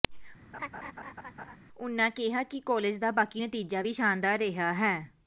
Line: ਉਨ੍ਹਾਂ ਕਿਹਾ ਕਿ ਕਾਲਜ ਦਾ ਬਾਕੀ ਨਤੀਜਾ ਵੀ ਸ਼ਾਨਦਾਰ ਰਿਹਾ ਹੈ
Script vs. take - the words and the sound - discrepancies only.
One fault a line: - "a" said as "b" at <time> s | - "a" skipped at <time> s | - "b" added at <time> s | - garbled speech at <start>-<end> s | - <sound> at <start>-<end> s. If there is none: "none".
- laugh at 0.5-1.6 s